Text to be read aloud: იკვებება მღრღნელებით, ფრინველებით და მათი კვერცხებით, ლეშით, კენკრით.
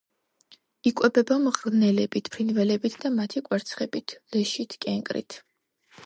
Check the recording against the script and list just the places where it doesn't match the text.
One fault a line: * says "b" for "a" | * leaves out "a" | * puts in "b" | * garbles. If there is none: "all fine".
all fine